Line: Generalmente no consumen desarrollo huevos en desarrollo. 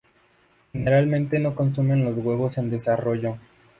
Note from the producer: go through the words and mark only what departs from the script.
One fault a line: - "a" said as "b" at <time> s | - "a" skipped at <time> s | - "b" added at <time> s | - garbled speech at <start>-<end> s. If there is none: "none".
- "desarrollo" said as "los" at 2.0 s